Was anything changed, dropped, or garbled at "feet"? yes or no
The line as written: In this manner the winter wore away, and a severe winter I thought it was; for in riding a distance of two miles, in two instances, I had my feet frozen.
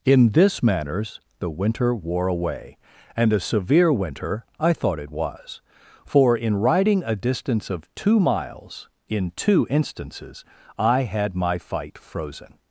yes